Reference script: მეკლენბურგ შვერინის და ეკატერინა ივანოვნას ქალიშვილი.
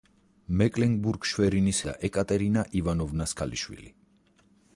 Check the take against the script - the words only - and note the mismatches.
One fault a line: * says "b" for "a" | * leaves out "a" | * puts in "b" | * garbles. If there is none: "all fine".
all fine